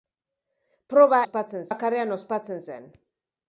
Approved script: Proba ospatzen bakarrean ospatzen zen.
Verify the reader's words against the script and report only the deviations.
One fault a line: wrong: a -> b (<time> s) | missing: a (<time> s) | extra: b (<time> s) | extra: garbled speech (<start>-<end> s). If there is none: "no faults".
no faults